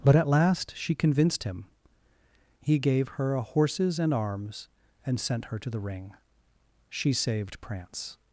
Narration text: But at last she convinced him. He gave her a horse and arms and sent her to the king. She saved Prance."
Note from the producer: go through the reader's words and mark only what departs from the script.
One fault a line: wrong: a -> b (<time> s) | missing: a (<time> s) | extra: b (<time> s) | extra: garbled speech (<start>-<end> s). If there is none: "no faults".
wrong: horse -> horses (3.4 s)
wrong: king -> ring (5.8 s)